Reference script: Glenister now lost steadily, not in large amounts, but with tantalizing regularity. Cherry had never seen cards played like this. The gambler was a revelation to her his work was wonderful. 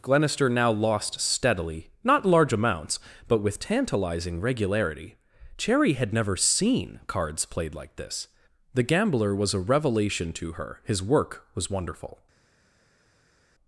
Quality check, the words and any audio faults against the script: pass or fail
fail